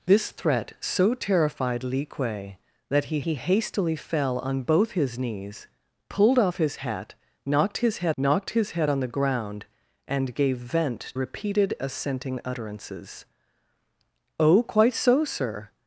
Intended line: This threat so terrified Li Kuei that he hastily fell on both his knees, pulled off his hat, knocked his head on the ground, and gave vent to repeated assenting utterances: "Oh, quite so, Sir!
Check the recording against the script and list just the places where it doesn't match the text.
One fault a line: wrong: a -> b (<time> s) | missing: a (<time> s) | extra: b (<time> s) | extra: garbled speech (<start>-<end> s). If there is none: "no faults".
extra: he (3.2 s)
extra: knocked his head (8.2 s)
missing: to (11.1 s)